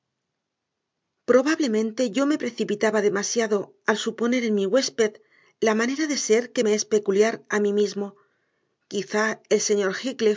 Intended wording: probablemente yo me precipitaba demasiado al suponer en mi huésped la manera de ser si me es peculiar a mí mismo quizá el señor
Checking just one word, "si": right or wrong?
wrong